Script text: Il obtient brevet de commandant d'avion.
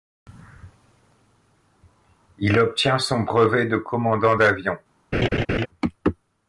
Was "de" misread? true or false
false